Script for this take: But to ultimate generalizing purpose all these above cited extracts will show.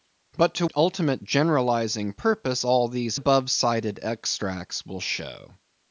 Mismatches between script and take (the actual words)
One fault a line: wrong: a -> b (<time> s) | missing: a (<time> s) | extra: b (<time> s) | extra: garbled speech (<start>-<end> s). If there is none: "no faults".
no faults